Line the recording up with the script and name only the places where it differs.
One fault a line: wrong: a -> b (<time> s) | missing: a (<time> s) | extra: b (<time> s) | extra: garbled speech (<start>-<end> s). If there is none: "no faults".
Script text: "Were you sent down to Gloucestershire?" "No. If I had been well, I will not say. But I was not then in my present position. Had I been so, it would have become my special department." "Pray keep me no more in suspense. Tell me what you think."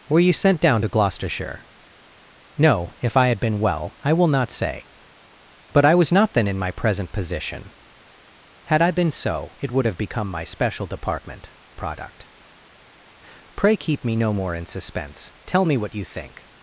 extra: product (11.8 s)